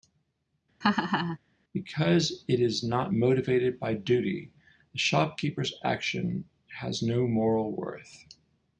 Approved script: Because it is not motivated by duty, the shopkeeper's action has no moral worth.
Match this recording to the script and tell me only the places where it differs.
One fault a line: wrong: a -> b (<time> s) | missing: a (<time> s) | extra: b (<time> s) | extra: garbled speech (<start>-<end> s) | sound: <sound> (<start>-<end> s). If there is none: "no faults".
sound: laugh (0.8-1.4 s)